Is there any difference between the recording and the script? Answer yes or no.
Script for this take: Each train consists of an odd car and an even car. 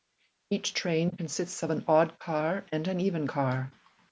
no